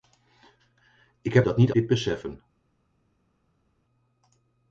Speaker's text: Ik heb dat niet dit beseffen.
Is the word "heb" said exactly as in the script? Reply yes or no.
yes